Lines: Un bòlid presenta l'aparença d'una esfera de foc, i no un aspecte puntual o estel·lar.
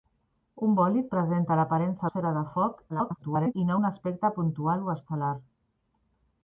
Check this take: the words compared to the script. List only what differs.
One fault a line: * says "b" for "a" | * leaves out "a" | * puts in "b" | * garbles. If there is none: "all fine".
* leaves out "d'una"
* garbles